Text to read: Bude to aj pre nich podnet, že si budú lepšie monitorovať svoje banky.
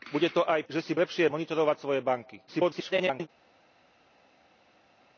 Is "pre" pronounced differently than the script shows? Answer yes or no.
yes